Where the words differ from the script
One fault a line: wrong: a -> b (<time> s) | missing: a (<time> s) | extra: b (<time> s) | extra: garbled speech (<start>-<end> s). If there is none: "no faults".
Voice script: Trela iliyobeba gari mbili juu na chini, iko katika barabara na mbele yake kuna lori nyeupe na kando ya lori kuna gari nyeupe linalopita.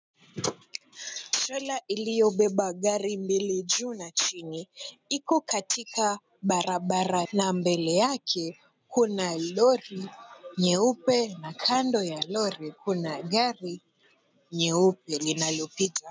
no faults